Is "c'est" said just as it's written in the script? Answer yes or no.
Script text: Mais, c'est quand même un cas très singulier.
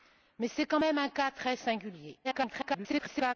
yes